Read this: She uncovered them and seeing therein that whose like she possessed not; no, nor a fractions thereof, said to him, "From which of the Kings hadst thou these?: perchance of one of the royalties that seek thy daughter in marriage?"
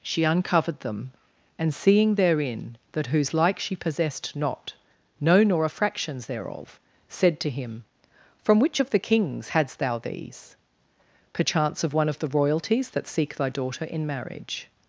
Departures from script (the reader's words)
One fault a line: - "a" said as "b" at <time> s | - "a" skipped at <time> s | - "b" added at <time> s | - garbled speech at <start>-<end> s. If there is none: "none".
none